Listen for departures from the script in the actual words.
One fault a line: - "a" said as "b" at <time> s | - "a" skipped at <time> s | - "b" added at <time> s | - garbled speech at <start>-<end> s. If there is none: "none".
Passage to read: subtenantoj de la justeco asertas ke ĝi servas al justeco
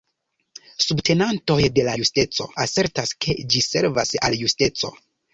none